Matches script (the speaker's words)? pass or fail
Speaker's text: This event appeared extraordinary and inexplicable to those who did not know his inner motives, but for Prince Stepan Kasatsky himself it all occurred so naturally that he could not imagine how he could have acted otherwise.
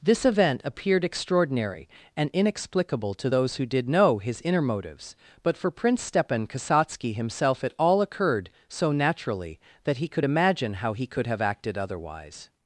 fail